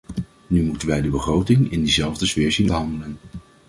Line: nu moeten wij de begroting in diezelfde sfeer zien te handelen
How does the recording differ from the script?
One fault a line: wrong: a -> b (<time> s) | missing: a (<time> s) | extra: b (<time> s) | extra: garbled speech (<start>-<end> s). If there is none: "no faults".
no faults